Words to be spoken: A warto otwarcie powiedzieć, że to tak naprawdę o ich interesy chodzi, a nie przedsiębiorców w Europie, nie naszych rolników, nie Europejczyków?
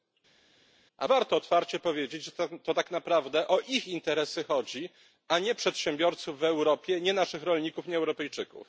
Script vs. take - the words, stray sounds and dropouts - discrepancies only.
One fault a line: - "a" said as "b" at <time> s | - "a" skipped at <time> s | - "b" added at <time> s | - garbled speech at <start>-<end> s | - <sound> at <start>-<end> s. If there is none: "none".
none